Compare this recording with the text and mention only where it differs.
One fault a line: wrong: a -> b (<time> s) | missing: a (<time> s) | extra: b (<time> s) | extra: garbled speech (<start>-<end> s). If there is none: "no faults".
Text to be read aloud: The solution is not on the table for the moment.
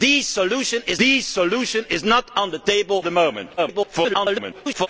extra: the solution is (1.0 s)
missing: for (3.0 s)
extra: garbled speech (3.6-4.9 s)